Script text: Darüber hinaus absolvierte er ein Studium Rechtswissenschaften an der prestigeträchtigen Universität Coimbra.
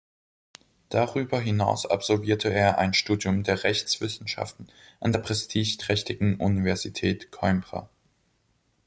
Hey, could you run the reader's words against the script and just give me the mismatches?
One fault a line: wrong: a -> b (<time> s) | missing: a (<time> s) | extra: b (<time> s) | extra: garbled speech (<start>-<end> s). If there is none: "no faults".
extra: der (3.4 s)